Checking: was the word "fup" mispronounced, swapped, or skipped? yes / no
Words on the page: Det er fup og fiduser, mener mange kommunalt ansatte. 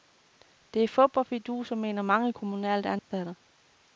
no